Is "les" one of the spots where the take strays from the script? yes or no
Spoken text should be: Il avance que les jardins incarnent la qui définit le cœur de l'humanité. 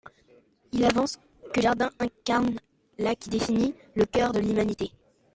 yes